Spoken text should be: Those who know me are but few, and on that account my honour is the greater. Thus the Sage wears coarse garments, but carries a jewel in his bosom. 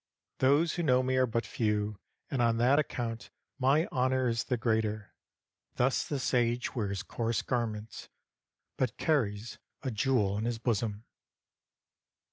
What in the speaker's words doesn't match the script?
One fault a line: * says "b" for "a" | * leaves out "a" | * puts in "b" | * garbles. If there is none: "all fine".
all fine